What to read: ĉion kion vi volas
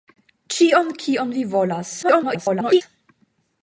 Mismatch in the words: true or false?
true